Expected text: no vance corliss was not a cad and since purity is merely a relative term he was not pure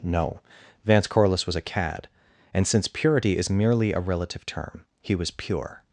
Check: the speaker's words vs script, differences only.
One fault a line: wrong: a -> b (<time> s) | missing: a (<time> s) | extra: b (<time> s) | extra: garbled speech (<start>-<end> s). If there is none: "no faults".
missing: not (1.6 s)
missing: not (5.3 s)